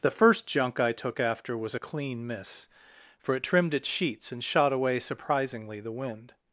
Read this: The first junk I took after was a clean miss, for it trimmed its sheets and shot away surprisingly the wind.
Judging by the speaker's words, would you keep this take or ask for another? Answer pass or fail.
pass